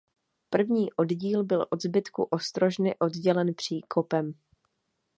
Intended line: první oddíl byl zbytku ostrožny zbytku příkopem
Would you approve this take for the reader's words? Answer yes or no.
no